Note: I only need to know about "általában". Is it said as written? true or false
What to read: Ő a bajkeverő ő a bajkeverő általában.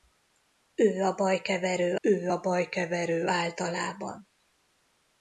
true